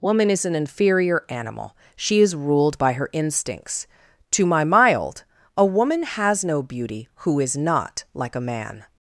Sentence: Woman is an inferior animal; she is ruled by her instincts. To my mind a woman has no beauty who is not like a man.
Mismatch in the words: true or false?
true